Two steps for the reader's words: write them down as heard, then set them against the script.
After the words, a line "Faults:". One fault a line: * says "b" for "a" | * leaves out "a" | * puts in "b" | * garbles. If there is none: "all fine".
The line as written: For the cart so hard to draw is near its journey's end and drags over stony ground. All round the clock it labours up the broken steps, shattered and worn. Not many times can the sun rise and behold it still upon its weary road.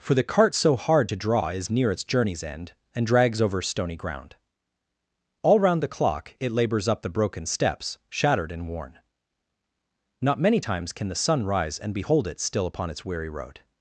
For the cart so hard to draw is near its journey's end and drags over stony ground. All round the clock it labours up the broken steps, shattered and worn. Not many times can the sun rise and behold it still upon its weary road.
Faults:
all fine